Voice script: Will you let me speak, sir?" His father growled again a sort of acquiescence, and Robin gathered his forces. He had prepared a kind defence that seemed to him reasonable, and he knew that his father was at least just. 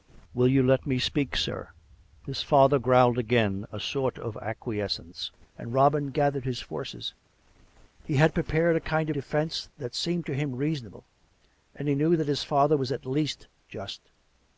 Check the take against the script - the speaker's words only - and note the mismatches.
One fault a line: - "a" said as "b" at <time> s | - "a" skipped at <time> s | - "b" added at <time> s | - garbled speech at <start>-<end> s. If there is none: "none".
none